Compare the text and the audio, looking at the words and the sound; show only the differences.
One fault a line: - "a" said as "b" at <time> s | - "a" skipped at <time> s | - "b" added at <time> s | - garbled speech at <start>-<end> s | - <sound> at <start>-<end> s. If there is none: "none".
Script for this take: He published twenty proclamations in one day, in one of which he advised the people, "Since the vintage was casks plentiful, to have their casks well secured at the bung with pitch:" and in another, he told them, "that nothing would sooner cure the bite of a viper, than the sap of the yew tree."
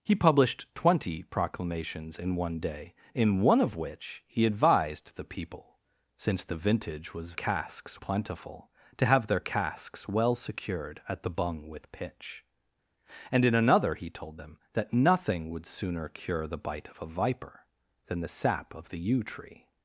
none